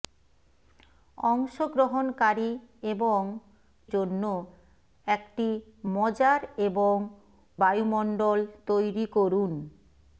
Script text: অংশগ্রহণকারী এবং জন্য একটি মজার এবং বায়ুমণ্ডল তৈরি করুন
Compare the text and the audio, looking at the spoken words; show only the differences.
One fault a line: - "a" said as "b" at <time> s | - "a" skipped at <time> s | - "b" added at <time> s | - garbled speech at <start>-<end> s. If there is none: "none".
none